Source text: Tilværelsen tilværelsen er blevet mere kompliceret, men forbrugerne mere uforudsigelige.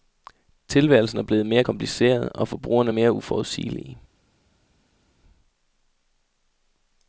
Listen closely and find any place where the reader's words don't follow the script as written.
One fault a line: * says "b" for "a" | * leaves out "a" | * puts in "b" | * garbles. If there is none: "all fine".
* leaves out "tilværelsen"
* says "og" for "men"